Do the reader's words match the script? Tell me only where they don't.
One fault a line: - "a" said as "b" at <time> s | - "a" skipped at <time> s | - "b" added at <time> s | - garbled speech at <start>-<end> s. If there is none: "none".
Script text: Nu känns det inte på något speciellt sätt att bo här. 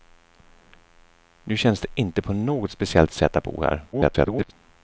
- garbled speech at 3.9-4.5 s